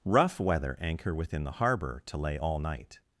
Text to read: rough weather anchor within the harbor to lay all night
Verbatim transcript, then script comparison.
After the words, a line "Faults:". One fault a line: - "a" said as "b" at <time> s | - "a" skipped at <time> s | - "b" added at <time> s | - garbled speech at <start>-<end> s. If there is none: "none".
rough weather anchor within the harbor to lay all night
Faults:
none